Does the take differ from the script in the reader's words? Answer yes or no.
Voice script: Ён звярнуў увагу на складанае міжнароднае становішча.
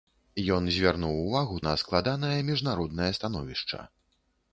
no